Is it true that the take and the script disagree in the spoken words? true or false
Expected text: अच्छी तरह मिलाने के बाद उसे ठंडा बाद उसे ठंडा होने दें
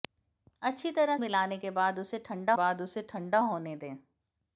false